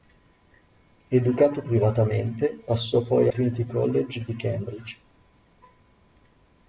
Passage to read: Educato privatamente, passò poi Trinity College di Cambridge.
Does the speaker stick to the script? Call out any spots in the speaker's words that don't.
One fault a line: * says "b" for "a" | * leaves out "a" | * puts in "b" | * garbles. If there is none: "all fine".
all fine